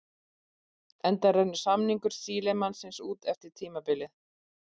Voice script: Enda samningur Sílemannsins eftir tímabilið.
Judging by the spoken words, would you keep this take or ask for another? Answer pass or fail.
fail